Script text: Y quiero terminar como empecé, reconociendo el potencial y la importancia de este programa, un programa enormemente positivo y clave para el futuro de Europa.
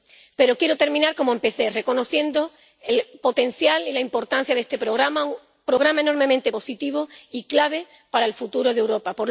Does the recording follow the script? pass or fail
fail